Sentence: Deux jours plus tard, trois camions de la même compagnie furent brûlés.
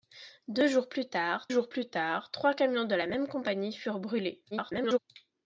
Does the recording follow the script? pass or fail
fail